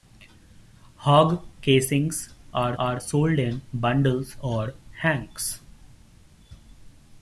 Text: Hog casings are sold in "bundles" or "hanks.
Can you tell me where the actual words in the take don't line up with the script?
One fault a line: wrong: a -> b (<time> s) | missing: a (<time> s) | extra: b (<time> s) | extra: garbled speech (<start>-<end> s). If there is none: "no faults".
extra: are (2.8 s)